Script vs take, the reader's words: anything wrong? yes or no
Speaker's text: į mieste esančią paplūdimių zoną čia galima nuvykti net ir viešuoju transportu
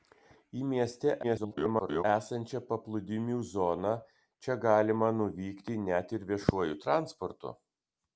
yes